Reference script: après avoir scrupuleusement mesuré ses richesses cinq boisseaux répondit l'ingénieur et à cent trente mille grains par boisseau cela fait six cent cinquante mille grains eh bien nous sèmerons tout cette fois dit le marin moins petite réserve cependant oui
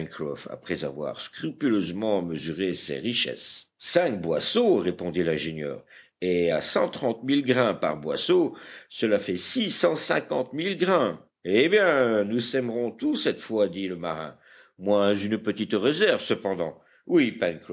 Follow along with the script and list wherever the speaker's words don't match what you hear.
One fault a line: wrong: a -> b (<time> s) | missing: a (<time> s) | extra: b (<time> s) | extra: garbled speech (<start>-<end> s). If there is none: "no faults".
extra: une (15.1 s)